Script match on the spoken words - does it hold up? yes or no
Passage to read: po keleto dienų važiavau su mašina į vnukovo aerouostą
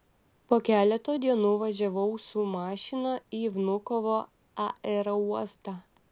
yes